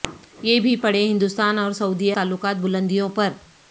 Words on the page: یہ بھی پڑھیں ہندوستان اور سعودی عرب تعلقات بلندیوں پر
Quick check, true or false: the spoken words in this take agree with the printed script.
false